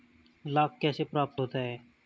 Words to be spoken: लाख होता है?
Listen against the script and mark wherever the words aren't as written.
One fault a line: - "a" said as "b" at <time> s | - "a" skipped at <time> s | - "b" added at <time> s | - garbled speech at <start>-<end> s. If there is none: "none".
- "कैसे प्राप्त" added at 0.8 s